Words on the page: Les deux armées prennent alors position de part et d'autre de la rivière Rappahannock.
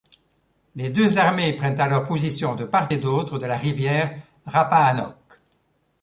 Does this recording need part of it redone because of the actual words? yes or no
no